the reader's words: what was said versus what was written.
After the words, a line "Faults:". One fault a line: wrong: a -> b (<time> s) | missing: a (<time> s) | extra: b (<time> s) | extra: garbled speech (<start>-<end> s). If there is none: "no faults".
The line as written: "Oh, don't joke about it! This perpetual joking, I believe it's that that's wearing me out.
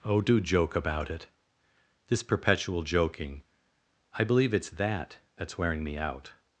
"Oh, do joke about it! This perpetual joking, I believe it's that that's wearing me out.
Faults:
wrong: don't -> do (0.2 s)